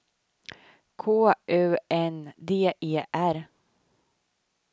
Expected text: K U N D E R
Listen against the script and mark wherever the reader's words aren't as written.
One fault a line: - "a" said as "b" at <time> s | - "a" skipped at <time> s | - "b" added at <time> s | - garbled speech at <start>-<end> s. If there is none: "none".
none